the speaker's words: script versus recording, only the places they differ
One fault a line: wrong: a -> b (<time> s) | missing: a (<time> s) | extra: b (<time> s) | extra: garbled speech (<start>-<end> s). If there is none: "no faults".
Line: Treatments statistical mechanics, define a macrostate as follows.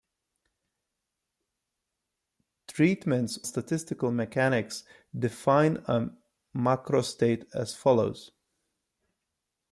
no faults